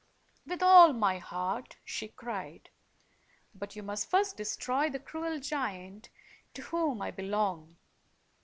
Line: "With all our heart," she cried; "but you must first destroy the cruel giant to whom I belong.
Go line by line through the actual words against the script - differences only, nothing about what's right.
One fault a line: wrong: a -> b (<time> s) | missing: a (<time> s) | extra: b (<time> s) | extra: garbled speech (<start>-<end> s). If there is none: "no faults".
wrong: our -> my (0.9 s)